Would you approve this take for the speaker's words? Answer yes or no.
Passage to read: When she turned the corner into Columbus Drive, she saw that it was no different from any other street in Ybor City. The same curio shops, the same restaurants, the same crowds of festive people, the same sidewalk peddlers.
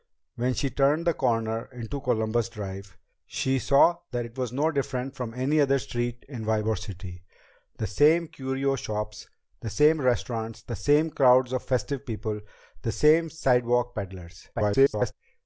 no